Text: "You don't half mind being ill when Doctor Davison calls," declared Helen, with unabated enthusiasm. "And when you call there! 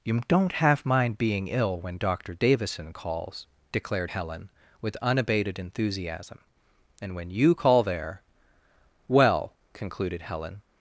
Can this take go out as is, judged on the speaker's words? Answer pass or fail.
fail